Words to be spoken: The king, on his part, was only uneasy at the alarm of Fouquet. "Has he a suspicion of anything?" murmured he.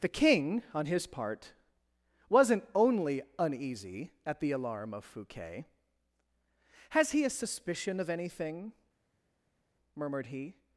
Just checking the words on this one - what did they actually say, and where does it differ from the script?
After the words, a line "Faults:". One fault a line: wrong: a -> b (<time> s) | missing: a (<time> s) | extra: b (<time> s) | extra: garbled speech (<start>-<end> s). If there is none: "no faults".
The king, on his part, wasn't only uneasy at the alarm of Fouquet. "Has he a suspicion of anything?" murmured he.
Faults:
wrong: was -> wasn't (2.3 s)